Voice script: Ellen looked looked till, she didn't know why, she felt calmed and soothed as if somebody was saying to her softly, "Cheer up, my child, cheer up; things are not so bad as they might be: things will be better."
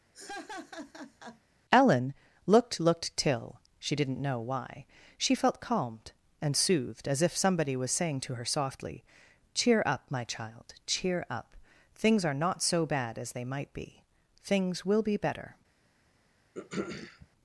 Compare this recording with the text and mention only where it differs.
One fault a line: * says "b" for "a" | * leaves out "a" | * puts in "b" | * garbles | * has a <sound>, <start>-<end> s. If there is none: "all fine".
* has a laugh, 0.1-1.4 s
* has a throat clearing, 16.5-17.3 s